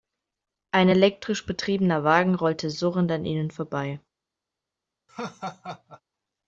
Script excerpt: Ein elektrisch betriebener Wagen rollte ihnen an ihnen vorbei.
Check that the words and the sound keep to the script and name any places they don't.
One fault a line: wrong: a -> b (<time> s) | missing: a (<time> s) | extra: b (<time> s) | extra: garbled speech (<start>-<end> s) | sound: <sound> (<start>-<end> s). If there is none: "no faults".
wrong: ihnen -> surrend (2.7 s)
sound: laugh (5.1-6.0 s)